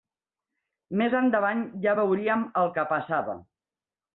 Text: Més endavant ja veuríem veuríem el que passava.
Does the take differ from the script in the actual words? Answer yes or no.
yes